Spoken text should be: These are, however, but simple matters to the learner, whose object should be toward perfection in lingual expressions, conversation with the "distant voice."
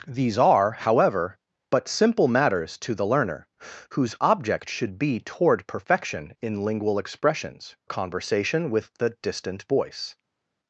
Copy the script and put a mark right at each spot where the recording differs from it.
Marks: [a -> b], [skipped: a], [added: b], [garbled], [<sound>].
These are, however, but simple matters to the learner, whose object should be toward perfection in lingual expressions, conversation with the "distant voice."